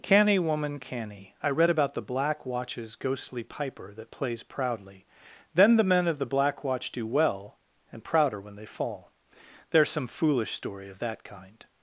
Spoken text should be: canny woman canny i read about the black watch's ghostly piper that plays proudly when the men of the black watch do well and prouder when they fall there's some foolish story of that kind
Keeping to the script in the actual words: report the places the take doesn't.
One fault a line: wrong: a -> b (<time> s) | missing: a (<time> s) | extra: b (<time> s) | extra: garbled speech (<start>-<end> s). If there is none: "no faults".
wrong: when -> then (5.5 s)